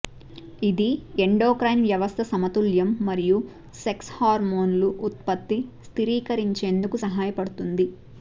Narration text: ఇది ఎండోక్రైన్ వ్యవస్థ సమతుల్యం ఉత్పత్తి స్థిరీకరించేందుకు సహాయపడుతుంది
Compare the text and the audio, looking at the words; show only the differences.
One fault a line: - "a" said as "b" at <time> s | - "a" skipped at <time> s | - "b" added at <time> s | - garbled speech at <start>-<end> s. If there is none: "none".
- "మరియు సెక్స్ హార్మోన్లు" added at 3.1 s